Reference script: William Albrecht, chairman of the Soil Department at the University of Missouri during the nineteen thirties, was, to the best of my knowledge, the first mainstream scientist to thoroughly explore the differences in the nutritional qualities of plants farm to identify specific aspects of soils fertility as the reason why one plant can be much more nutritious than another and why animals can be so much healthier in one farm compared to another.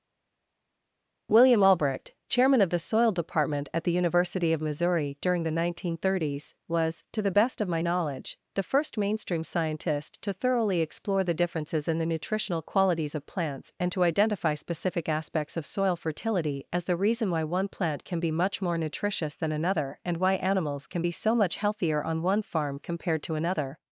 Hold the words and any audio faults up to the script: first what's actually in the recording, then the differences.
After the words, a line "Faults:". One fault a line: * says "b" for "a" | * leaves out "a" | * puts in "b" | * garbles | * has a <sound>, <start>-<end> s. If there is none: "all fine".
William Albrecht, chairman of the Soil Department at the University of Missouri during the nineteen thirties, was, to the best of my knowledge, the first mainstream scientist to thoroughly explore the differences in the nutritional qualities of plants and to identify specific aspects of soil fertility as the reason why one plant can be much more nutritious than another and why animals can be so much healthier on one farm compared to another.
Faults:
* says "and" for "farm"
* says "soil" for "soils"
* says "on" for "in"